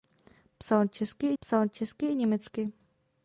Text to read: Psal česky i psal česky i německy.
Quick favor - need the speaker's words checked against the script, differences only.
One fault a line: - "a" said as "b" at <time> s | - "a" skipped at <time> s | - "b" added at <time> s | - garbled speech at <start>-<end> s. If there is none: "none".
none